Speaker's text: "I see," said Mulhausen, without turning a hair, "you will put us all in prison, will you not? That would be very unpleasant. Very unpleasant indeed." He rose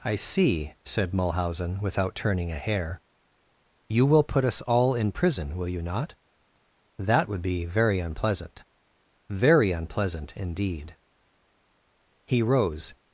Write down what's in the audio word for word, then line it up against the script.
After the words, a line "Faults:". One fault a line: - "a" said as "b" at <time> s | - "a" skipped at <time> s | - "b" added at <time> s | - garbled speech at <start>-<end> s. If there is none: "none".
"I see," said Mulhausen, without turning a hair, "you will put us all in prison, will you not? That would be very unpleasant. Very unpleasant indeed." He rose
Faults:
none